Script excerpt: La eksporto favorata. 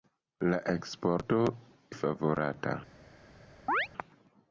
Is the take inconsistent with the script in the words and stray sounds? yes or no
yes